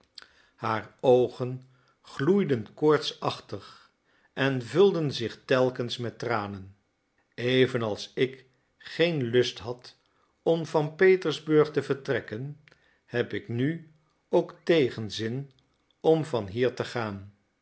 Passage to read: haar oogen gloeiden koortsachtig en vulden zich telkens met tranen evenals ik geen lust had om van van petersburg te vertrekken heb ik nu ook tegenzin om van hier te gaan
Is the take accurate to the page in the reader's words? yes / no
no